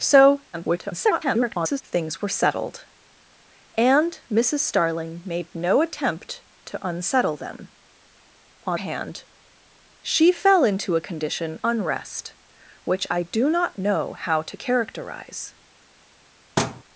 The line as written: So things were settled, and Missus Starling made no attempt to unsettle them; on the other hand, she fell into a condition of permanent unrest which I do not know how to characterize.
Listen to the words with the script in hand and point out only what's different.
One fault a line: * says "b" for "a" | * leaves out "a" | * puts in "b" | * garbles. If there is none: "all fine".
* garbles
* leaves out "the other"
* leaves out "of permanent"